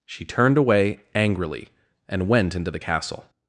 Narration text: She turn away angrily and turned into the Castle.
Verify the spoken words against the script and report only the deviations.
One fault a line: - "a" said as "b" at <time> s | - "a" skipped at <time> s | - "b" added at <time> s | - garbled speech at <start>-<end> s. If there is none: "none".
- "turn" said as "turned" at 0.2 s
- "turned" said as "went" at 2.3 s